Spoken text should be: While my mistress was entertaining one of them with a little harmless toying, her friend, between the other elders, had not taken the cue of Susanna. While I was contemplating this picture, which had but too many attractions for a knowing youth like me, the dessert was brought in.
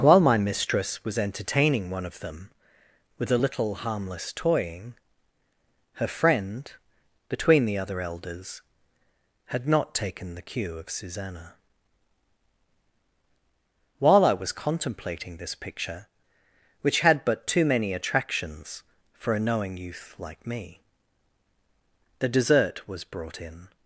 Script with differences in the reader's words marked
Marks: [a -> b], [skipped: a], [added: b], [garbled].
While my mistress was entertaining one of them with a little harmless toying, her friend, between the other elders, had not taken the cue of Susanna. While I was contemplating this picture, which had but too many attractions for a knowing youth like me, the dessert was brought in.